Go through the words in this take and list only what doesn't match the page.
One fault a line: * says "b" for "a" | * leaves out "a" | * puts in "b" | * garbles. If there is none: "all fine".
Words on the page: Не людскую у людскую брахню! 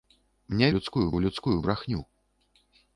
all fine